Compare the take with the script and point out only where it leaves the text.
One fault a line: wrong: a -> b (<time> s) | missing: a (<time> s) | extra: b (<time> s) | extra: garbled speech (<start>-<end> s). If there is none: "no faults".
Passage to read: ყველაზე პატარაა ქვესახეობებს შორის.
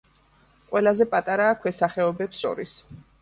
no faults